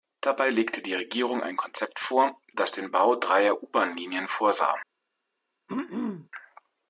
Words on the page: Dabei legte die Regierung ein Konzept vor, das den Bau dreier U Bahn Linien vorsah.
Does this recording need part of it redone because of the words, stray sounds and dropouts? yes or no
yes